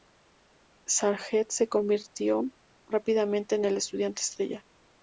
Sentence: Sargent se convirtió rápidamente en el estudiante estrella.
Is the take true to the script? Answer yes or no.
yes